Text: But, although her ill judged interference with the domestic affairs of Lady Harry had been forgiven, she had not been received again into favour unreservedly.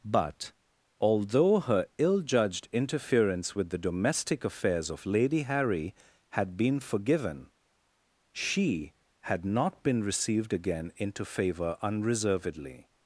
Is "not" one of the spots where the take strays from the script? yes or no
no